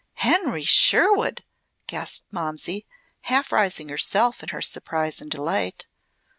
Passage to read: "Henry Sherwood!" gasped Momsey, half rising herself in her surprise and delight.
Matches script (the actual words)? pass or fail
pass